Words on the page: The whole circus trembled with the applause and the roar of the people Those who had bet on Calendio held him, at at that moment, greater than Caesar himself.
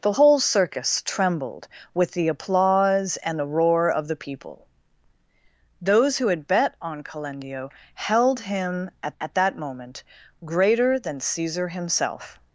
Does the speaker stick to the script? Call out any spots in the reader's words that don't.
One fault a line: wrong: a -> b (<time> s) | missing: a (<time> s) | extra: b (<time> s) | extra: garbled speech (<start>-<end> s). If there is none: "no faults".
no faults